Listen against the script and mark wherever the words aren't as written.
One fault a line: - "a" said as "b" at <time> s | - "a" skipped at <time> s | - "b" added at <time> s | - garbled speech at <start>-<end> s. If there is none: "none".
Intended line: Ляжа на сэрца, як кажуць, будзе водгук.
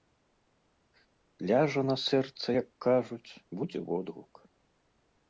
none